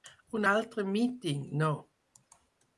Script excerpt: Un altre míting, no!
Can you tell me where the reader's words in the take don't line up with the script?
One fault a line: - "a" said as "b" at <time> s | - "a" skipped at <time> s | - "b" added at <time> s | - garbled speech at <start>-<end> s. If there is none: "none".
none